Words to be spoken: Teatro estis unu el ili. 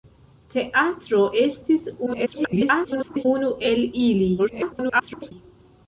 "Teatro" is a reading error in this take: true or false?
false